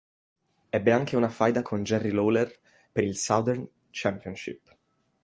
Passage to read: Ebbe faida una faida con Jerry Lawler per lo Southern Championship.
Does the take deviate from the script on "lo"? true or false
true